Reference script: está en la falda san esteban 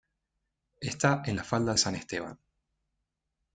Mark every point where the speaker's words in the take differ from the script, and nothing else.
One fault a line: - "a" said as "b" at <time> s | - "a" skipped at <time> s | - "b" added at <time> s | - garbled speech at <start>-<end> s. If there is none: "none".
none